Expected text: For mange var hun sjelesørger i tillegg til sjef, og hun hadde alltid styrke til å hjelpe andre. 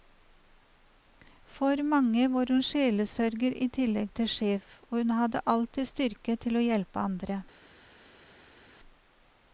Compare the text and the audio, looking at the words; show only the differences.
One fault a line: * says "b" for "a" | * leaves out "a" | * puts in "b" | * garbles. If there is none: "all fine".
all fine